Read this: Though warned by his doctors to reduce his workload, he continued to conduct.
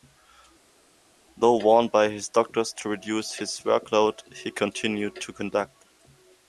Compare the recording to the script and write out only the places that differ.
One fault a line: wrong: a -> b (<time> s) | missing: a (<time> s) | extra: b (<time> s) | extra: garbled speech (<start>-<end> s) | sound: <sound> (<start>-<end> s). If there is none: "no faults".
no faults